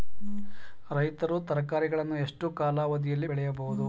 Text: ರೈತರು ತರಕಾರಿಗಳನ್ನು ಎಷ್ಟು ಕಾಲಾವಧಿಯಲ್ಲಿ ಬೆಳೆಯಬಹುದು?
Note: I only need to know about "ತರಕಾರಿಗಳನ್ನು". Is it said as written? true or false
true